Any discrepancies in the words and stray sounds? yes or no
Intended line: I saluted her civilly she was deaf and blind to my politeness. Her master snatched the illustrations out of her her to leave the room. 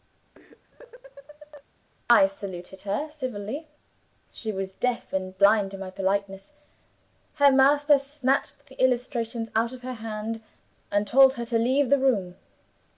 yes